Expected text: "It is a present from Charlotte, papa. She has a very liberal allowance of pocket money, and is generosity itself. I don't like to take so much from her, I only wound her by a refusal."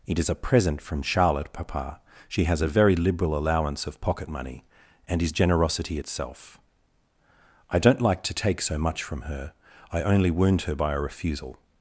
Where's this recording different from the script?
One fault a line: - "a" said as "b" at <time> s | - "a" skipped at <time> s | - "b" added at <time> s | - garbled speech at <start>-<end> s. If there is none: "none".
none